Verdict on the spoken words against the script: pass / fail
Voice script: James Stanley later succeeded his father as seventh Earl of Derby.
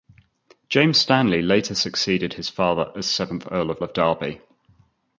fail